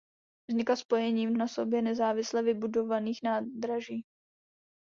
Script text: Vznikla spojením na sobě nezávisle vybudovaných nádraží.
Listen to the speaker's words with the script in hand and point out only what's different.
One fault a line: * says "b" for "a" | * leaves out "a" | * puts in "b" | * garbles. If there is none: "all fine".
all fine